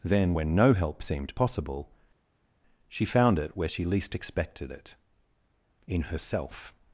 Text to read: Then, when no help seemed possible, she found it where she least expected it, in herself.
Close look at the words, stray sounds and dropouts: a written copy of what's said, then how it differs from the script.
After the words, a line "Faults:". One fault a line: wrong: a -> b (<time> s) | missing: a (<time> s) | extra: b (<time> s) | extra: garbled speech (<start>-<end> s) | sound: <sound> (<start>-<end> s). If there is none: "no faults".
Then, when no help seemed possible, she found it where she least expected it, in herself.
Faults:
no faults